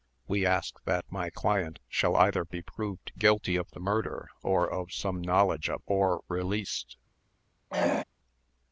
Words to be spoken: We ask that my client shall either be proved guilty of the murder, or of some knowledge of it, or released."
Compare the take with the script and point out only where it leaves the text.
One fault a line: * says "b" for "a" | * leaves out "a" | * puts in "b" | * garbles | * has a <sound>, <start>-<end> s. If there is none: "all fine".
* leaves out "it"
* has a throat clearing, 7.7-8.0 s